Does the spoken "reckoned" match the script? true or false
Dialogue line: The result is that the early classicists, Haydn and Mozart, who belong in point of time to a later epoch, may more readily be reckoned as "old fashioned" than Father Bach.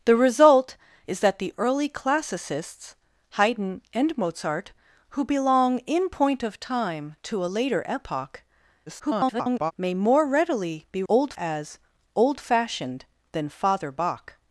false